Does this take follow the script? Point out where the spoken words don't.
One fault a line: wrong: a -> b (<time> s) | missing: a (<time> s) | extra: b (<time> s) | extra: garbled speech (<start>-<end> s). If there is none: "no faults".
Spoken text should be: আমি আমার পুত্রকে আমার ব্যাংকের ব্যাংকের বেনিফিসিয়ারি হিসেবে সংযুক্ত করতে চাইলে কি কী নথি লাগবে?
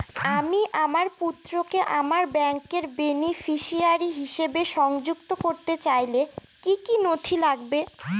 missing: ব্যাংকের (2.9 s)